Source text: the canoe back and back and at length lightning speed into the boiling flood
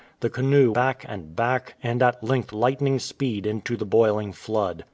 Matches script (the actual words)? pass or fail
pass